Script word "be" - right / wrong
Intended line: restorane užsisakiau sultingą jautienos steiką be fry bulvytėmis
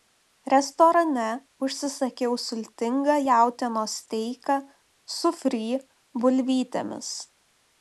wrong